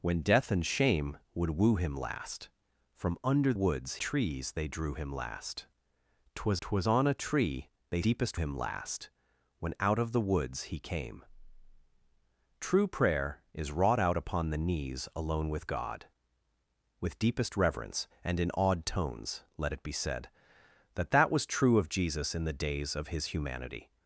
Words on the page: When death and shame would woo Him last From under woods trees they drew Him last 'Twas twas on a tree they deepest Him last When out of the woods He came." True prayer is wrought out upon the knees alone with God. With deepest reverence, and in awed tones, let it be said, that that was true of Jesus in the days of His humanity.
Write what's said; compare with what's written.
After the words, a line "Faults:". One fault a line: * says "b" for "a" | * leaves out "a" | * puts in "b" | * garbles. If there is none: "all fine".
When death and shame would woo Him last From under woods trees they drew Him last 'Twas twas on a tree they deepest Him last When out of the woods He came." True prayer is wrought out upon the knees alone with God. With deepest reverence, and in awed tones, let it be said, that that was true of Jesus in the days of His humanity.
Faults:
all fine